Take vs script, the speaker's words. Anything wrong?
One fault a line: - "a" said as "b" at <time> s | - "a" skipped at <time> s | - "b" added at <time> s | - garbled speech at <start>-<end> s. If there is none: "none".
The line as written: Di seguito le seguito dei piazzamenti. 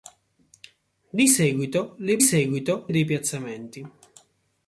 none